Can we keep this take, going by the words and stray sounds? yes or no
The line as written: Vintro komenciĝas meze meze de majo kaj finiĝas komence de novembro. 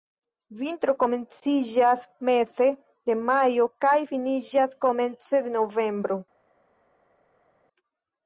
no